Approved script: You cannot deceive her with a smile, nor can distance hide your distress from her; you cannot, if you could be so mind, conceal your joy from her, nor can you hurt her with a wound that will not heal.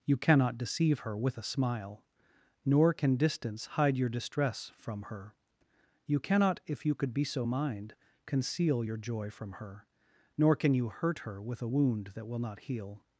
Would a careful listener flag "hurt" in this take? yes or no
no